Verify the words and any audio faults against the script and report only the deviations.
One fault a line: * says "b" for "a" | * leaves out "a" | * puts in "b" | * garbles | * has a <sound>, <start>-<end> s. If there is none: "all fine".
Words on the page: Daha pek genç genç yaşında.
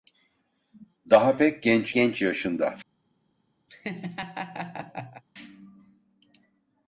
* has a laugh, 3.7-5.2 s